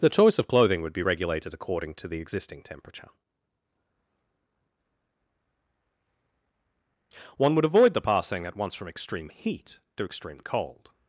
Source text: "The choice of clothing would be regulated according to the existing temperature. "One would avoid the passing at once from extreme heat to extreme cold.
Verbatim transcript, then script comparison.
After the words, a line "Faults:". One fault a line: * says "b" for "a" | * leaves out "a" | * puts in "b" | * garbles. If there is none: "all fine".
"The choice of clothing would be regulated according to the existing temperature. "One would avoid the passing at once from extreme heat to extreme cold.
Faults:
all fine